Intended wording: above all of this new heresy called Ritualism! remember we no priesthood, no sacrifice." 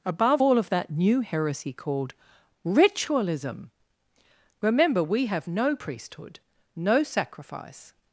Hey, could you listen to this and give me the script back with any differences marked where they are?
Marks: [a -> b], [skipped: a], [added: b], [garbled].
above all of [this -> that] new heresy called Ritualism! remember we [added: have] no priesthood, no sacrifice."